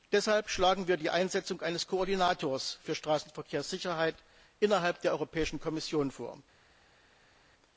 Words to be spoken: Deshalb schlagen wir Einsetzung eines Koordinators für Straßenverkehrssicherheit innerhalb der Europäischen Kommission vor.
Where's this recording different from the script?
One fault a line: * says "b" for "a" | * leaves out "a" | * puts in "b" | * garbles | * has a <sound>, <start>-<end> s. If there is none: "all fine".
* puts in "die"